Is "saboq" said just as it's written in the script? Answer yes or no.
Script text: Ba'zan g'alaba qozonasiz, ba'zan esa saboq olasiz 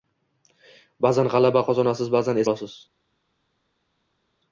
no